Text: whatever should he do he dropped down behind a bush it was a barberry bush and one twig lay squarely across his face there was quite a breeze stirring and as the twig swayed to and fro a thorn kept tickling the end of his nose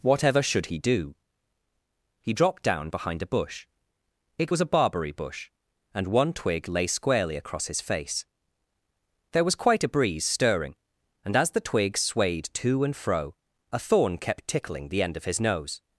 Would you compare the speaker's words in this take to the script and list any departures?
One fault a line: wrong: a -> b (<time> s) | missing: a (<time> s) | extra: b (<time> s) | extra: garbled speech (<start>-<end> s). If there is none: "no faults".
no faults